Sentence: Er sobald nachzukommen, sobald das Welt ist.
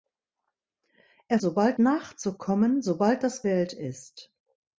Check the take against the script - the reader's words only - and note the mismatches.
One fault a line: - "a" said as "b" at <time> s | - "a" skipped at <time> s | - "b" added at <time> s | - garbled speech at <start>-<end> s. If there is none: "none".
none